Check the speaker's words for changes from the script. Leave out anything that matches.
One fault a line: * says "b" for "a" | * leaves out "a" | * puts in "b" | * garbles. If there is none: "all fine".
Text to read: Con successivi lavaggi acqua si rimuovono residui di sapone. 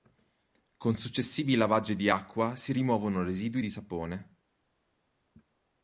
* puts in "di"